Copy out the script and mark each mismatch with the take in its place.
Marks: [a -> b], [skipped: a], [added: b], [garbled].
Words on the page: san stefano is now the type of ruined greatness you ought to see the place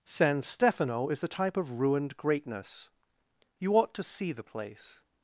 san stefano is [skipped: now] the type of ruined greatness you ought to see the place